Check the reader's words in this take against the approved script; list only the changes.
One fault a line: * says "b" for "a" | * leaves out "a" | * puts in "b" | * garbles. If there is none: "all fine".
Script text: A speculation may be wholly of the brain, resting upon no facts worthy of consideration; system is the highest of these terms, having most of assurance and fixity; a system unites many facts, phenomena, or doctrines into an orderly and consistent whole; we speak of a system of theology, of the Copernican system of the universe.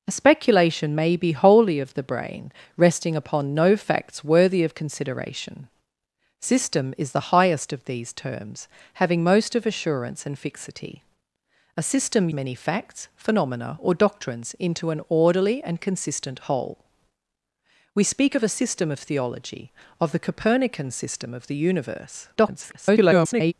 * leaves out "unites"
* garbles